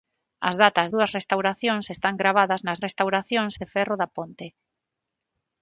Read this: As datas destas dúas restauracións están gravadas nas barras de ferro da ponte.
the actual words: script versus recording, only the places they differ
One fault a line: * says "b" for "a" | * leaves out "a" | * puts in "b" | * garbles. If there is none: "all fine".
* leaves out "destas"
* says "restauracións" for "barras"